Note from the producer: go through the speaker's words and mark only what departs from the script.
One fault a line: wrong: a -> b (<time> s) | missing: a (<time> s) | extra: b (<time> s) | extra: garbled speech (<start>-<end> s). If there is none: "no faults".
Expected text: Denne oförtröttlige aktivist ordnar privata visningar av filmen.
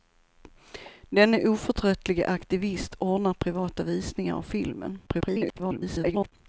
extra: garbled speech (5.1-6.3 s)